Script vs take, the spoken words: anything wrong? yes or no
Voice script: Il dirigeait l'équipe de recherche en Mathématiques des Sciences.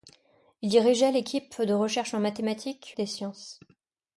no